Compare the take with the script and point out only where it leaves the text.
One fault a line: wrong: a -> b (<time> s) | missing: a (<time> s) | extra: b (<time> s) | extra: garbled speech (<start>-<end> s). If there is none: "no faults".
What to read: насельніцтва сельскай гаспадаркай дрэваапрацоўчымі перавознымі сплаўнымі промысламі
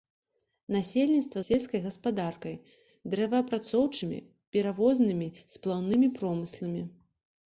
no faults